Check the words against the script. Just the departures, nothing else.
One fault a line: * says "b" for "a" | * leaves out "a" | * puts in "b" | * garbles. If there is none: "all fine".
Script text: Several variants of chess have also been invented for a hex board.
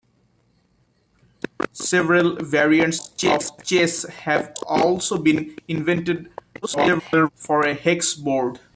* garbles